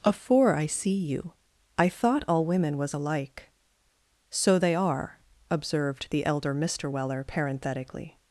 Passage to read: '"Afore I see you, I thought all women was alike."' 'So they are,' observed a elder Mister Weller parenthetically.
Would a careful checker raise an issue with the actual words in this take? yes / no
yes